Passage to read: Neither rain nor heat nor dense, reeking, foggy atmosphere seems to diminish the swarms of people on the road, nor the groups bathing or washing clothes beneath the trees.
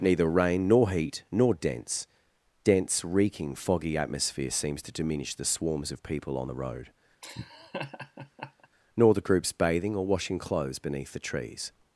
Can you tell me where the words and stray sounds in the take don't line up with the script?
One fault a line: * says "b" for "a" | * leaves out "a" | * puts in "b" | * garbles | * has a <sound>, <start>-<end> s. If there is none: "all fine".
* puts in "dense"
* has a laugh, 7.2-8.7 s